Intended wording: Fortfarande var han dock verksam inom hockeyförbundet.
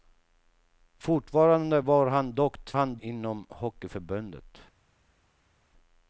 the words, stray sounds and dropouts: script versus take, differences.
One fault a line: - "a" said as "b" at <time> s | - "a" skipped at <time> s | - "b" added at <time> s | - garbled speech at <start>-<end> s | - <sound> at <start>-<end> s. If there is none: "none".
- "verksam" said as "han" at 2.7 s